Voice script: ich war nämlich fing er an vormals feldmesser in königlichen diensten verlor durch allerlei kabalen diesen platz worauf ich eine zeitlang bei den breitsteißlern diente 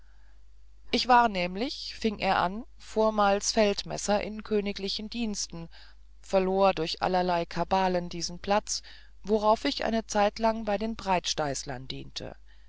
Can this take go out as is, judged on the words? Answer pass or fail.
pass